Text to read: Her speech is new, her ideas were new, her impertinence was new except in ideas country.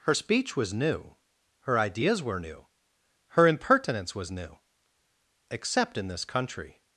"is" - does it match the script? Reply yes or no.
no